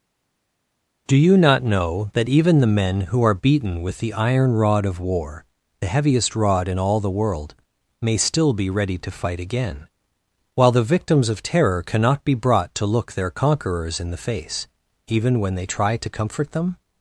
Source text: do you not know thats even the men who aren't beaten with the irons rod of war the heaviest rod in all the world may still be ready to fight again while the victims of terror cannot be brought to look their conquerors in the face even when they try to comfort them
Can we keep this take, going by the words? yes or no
no